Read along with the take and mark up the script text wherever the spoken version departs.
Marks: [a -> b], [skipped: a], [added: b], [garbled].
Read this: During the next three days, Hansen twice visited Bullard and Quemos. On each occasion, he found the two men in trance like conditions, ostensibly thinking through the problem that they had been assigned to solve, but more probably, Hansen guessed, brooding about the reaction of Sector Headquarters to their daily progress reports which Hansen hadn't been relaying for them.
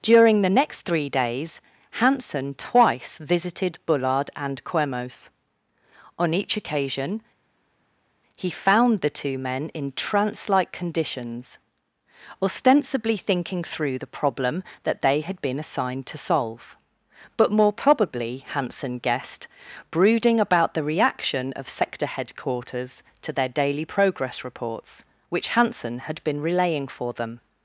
During the next three days, Hansen twice visited Bullard and Quemos. On each occasion, he found the two men in trance like conditions, ostensibly thinking through the problem that they had been assigned to solve, but more probably, Hansen guessed, brooding about the reaction of Sector Headquarters to their daily progress reports which Hansen [hadn't -> had] been relaying for them.